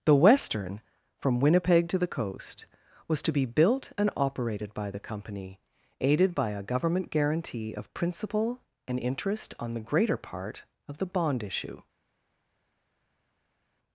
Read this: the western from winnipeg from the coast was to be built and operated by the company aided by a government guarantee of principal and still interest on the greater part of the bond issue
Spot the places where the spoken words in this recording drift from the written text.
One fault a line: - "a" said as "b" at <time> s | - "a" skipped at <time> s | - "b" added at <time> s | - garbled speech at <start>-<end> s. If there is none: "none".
- "from" said as "to" at 1.9 s
- "still" skipped at 9.0 s